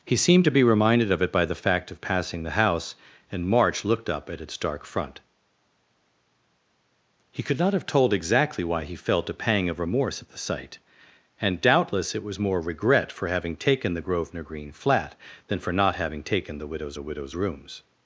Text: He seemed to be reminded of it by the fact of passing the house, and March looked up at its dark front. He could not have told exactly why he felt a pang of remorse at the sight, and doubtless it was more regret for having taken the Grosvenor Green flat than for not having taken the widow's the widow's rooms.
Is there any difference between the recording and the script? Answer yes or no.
no